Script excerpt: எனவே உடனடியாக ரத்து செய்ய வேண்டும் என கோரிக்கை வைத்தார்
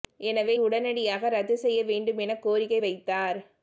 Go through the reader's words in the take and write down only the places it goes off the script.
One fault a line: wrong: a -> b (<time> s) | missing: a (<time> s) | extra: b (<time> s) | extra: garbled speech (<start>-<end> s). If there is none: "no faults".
no faults